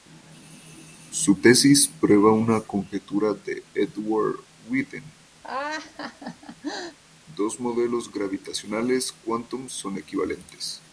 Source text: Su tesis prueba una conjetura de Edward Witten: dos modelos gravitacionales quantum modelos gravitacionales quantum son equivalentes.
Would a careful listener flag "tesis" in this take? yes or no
no